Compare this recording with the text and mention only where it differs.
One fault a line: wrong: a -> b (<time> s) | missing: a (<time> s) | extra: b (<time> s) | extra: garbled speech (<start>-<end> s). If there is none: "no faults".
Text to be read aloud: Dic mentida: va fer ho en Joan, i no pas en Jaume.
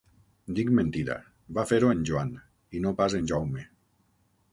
no faults